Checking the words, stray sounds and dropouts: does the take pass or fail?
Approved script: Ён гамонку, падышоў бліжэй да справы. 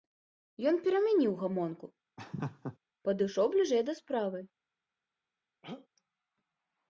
fail